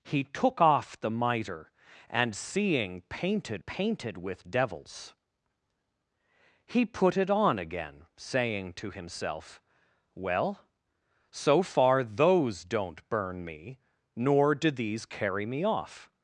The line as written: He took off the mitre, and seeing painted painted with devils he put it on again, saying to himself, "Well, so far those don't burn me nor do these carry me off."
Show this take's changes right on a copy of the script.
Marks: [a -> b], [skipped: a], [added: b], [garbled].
He took off the mitre, and seeing painted painted with devils he put it on again, saying to himself, "Well, so far those don't burn me nor do these carry me off."